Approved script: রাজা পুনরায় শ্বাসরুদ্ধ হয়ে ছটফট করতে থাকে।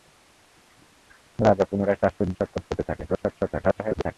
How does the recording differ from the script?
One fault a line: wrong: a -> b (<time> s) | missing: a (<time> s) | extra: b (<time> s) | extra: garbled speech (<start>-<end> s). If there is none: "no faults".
missing: হয়ে (2.4 s)
extra: garbled speech (3.1-4.2 s)